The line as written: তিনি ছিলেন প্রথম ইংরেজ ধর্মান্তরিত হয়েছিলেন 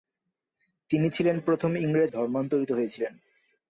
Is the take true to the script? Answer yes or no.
yes